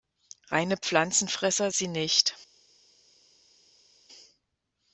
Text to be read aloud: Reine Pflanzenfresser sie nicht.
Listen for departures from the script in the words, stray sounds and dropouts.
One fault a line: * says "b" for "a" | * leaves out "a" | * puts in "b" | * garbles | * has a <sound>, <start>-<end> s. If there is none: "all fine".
all fine